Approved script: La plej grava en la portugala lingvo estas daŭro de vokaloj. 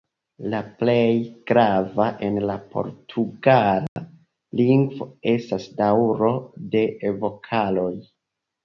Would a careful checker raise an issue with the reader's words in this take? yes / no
no